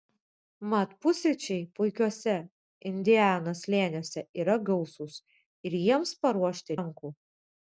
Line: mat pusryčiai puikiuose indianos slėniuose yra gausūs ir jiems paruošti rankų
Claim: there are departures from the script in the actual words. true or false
false